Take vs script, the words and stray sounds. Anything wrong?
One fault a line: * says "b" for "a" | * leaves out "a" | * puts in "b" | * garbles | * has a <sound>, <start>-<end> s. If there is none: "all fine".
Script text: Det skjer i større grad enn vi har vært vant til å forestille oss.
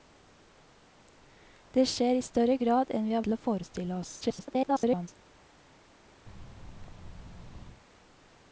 * leaves out "vært vant"
* garbles
* has a thud, 6.3-7.8 s